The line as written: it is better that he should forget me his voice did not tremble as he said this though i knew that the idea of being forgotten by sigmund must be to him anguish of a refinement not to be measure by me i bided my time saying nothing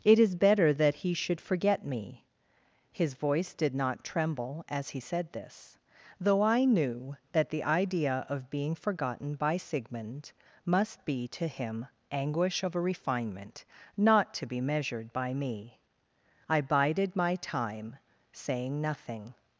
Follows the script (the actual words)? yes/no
no